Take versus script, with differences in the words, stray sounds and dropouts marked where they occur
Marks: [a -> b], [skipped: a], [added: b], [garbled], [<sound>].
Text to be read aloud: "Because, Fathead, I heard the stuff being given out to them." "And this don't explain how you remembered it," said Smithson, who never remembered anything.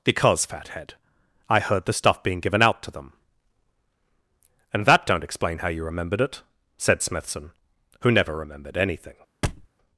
"Because, Fathead, I heard the stuff being given out to them." "And [this -> that] don't explain how you remembered it," said Smithson, who never remembered anything. [thud]